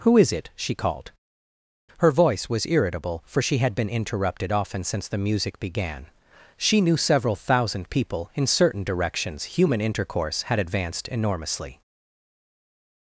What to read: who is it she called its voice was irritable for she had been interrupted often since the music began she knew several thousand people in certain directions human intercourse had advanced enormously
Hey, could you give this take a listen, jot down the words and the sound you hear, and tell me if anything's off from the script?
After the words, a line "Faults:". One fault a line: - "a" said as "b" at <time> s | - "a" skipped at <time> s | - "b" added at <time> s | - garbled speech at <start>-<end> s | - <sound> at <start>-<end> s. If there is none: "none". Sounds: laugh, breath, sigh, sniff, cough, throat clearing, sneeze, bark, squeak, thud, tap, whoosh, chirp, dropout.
who is it she called her voice was irritable for she had been interrupted often since the music began she knew several thousand people in certain directions human intercourse had advanced enormously
Faults:
- "its" said as "her" at 2.0 s